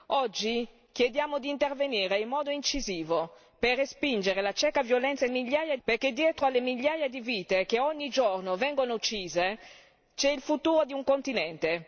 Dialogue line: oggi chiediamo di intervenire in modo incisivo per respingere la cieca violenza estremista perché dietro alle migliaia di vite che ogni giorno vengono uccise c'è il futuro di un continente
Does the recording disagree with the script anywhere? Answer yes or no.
yes